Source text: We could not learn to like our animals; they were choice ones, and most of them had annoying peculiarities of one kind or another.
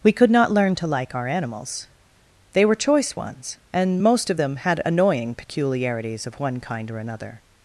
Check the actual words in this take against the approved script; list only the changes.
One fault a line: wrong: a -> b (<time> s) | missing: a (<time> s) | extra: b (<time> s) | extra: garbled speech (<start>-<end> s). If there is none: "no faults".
no faults